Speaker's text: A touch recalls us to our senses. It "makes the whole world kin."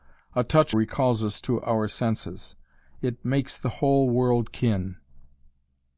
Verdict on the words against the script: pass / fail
pass